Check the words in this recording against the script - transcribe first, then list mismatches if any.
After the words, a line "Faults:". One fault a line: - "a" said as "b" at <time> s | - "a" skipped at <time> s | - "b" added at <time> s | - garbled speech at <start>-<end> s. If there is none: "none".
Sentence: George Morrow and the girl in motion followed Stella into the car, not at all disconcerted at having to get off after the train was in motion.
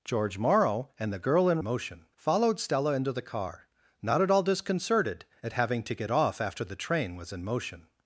George Morrow and the girl in motion followed Stella into the car, not at all disconcerted at having to get off after the train was in motion.
Faults:
none